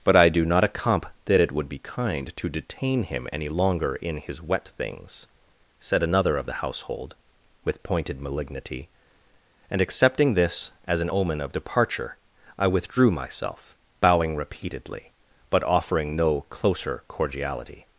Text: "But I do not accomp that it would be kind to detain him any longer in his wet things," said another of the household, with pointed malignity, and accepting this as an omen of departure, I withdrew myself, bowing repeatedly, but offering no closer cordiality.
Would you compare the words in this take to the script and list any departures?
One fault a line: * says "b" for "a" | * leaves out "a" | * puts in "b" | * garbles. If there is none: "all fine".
all fine